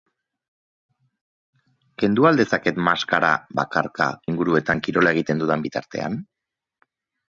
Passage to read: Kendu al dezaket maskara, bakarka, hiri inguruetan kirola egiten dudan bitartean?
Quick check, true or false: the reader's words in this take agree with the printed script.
false